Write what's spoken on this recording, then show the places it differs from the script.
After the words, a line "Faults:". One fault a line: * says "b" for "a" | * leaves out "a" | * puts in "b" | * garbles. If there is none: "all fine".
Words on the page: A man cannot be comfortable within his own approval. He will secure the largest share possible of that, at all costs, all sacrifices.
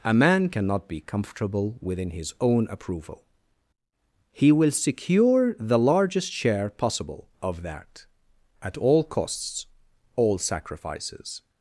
A man cannot be comfortable within his own approval. He will secure the largest share possible of that, at all costs, all sacrifices.
Faults:
all fine